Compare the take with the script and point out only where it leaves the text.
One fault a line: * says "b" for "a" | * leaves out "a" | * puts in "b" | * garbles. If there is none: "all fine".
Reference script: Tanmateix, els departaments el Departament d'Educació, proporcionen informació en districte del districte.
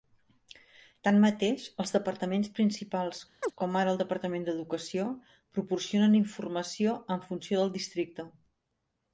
* puts in "principals com ara"
* says "funció" for "districte"